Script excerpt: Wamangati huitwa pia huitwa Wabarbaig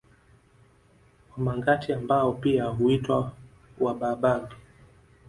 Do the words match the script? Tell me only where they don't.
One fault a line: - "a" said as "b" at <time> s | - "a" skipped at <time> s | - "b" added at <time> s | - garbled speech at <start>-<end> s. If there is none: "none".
- "huitwa" said as "ambao" at 1.9 s